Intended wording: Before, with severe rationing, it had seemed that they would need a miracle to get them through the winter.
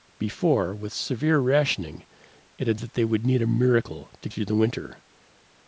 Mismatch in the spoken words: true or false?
true